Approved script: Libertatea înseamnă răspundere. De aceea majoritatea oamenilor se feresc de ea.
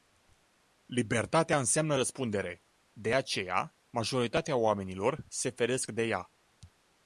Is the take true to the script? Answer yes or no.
yes